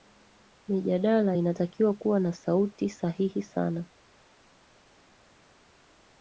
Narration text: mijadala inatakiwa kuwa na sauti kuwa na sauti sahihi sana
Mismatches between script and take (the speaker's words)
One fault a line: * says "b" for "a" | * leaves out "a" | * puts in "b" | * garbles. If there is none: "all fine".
* leaves out "kuwa na sauti"